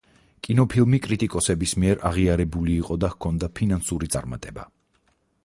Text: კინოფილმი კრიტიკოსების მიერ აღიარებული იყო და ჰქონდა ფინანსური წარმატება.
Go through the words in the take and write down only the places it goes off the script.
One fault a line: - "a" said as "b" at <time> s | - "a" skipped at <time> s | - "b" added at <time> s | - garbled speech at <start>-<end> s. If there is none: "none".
none